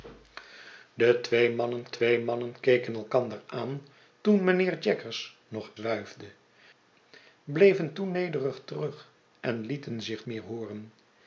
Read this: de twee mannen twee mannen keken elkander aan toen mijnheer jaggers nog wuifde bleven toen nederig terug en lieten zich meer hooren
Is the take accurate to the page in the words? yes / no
yes